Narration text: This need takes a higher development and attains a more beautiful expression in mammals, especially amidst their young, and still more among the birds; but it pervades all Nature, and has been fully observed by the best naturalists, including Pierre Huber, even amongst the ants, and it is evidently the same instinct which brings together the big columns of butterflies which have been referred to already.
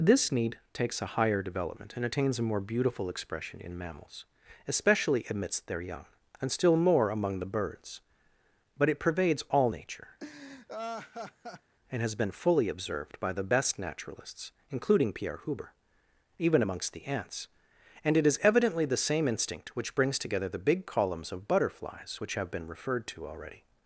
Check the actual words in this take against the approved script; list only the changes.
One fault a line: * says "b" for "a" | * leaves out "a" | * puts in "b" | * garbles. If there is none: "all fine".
all fine